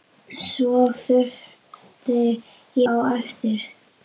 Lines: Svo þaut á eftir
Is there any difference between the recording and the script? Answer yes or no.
no